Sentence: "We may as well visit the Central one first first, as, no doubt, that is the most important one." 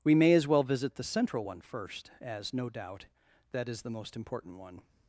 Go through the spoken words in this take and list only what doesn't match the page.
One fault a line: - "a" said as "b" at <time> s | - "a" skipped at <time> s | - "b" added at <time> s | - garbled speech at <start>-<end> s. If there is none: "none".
- "first" skipped at 2.1 s